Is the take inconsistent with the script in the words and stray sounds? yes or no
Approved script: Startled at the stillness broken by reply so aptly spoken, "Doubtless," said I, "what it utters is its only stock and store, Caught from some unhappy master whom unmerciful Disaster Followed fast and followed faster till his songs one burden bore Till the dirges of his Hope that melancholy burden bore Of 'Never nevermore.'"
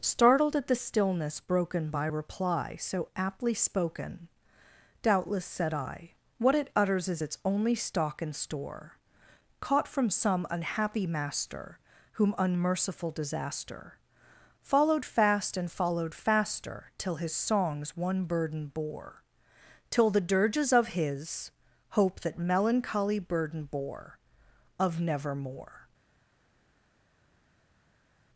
yes